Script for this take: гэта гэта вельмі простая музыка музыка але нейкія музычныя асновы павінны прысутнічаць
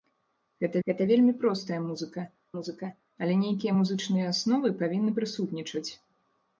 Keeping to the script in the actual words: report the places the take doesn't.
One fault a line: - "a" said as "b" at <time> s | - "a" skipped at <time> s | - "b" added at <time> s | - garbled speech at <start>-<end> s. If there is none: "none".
none